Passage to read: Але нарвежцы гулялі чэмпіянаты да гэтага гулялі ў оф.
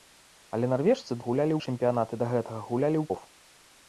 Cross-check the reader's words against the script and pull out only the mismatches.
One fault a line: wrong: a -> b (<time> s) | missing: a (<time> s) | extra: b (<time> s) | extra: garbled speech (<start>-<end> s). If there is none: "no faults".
no faults